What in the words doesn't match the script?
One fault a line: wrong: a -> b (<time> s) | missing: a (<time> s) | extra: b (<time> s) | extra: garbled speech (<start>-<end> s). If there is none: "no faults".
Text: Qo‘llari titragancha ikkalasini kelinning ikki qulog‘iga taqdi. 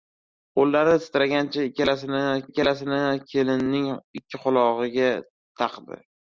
extra: ikkalasini (2.5 s)